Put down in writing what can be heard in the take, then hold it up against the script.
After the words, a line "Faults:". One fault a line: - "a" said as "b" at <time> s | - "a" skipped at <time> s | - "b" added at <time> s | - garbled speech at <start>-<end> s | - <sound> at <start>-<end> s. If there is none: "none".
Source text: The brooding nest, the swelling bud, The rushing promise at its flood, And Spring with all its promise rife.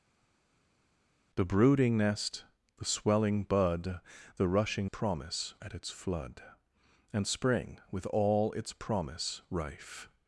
The brooding nest, the swelling bud, The rushing promise at its flood, And Spring with all its promise rife.
Faults:
none